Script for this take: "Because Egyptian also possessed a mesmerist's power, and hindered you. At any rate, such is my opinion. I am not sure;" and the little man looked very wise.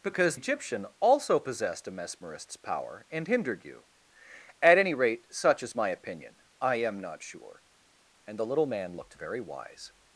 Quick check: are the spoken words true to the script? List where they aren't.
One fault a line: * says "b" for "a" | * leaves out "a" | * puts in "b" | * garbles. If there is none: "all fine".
all fine